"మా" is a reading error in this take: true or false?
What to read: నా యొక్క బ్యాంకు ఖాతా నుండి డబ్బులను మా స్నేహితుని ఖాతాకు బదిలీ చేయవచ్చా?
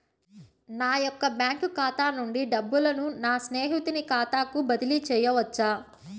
true